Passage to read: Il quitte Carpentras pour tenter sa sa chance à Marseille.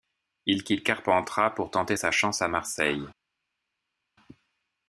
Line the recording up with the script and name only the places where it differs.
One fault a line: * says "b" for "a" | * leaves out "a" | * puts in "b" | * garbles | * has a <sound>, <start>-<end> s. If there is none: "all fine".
* leaves out "sa"